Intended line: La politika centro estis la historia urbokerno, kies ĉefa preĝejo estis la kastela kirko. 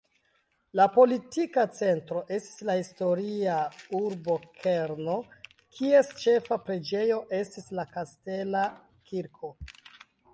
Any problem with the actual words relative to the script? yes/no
no